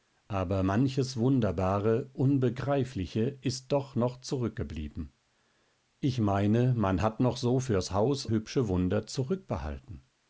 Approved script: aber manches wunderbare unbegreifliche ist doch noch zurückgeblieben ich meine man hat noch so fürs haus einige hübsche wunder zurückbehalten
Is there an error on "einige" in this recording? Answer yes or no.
yes